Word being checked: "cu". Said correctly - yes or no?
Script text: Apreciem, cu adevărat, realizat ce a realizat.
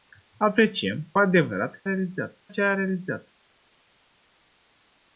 yes